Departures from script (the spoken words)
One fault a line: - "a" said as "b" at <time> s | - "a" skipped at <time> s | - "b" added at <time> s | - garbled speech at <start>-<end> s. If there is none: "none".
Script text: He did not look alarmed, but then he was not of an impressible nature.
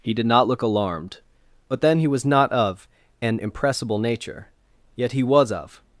- "Yet he was of" added at 5.0 s